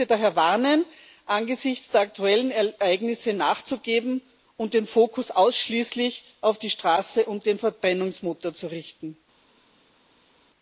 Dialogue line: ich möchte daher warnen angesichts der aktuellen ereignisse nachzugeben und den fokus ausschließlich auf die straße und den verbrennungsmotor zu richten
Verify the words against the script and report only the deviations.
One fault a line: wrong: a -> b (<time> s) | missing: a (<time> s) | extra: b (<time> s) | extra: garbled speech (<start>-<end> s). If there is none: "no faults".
no faults